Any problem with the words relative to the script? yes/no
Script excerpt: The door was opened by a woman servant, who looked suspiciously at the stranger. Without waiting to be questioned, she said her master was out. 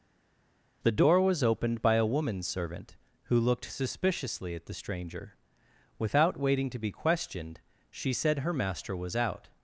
no